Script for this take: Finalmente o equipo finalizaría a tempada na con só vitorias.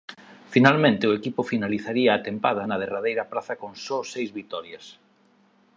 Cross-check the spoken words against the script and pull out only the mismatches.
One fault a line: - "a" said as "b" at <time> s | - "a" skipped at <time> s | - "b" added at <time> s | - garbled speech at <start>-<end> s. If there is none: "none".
- "derradeira praza" added at 2.8 s
- "seis" added at 4.1 s